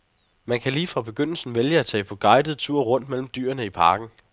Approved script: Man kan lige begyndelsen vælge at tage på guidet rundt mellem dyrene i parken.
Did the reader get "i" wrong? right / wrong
right